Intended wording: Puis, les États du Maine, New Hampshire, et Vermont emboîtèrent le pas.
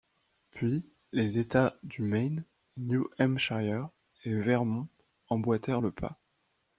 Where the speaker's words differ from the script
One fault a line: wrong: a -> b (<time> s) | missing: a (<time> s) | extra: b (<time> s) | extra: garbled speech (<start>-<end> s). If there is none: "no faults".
no faults